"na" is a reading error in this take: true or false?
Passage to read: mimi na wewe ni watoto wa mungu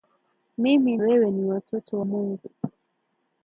true